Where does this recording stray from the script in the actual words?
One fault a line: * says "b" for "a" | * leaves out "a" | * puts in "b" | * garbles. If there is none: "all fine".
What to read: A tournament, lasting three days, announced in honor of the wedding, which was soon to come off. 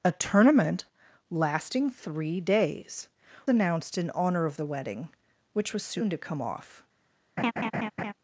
all fine